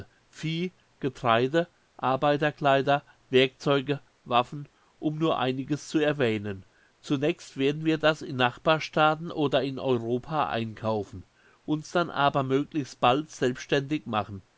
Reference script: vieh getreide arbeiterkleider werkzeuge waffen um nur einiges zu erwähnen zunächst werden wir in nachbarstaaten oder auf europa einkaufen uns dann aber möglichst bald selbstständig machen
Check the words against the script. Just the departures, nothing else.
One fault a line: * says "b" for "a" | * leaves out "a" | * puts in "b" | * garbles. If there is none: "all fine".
* puts in "das"
* says "in" for "auf"